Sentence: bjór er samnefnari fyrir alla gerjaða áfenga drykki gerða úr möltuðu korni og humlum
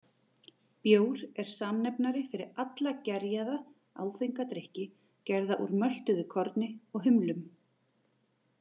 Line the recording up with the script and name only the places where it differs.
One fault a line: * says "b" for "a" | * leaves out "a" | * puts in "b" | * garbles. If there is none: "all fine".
all fine